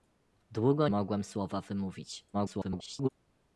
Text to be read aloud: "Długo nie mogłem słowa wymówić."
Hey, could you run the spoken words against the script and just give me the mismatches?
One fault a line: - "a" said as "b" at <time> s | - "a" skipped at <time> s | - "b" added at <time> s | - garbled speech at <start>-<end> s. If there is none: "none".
- "nie" skipped at 0.9 s
- garbled speech at 2.3-3.1 s